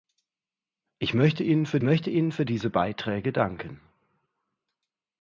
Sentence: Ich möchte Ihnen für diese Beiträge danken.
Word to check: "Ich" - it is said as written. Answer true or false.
true